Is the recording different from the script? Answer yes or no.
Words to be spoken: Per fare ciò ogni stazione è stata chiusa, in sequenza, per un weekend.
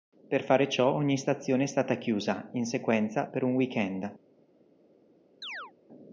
no